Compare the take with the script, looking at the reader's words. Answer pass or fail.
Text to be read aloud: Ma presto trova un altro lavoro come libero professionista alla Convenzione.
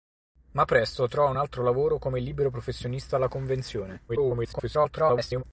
fail